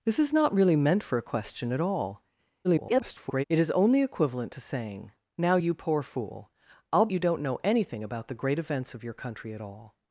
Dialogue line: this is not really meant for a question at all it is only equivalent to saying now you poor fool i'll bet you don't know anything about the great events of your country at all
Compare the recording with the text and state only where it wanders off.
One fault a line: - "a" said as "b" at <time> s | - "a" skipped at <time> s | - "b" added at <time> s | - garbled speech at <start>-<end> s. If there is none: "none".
- garbled speech at 2.6-3.4 s
- "bet" skipped at 7.1 s